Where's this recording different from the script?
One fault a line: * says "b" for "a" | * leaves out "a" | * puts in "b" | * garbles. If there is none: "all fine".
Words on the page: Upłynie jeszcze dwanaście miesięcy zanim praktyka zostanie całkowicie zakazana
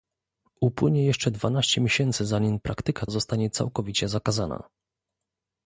all fine